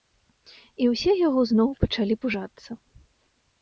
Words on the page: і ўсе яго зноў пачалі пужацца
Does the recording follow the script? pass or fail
pass